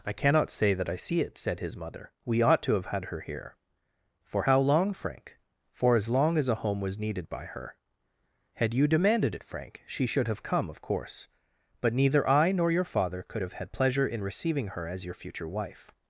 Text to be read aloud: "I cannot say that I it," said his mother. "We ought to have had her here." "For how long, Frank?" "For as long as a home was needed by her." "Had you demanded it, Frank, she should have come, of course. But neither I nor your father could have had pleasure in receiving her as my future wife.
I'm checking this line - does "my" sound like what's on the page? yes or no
no